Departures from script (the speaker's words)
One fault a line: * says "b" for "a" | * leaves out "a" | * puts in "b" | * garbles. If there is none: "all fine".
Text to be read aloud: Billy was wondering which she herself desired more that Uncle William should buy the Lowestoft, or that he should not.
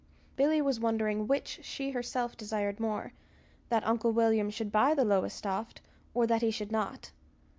all fine